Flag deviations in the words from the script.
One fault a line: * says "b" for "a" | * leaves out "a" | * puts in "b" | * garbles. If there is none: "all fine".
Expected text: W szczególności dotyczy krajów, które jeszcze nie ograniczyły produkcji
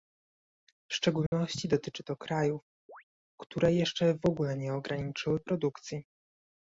* puts in "to"
* puts in "w ogóle"